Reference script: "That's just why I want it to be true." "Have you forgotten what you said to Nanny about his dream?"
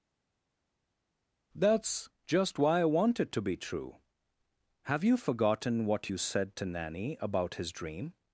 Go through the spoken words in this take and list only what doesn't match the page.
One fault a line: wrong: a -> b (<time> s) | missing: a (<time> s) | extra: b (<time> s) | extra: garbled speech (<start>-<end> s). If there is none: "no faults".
no faults